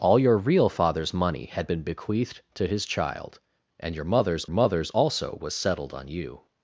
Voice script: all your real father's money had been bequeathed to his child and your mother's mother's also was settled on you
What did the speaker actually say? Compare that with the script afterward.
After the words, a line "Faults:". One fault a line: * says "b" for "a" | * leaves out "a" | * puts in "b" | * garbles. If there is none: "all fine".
all your real father's money had been bequeathed to his child and your mother's mother's also was settled on you
Faults:
all fine